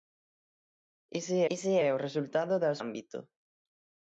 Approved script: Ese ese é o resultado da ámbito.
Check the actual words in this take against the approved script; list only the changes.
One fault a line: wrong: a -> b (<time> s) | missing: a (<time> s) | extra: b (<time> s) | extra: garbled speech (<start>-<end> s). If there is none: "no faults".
no faults